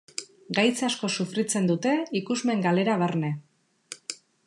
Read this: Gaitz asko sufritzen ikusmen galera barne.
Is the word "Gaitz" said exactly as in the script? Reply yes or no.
yes